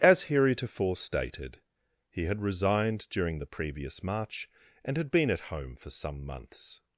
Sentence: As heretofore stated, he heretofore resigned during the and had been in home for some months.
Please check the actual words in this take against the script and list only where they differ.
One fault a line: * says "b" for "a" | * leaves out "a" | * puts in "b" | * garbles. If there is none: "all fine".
* says "had" for "heretofore"
* puts in "previous March"
* says "at" for "in"